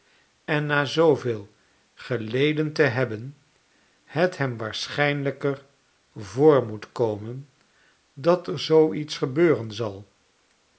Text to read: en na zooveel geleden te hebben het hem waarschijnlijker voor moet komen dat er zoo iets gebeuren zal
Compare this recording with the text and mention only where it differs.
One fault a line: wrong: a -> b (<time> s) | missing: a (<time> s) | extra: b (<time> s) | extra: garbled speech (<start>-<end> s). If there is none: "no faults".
no faults